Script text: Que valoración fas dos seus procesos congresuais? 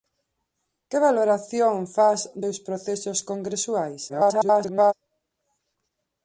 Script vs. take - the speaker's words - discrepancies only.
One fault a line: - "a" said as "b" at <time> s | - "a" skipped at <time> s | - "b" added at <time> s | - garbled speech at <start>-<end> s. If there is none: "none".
- "dos" skipped at 2.2 s
- garbled speech at 4.1-4.9 s